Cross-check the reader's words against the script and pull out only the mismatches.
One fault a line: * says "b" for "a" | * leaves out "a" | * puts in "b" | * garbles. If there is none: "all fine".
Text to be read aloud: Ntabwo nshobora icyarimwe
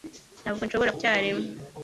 all fine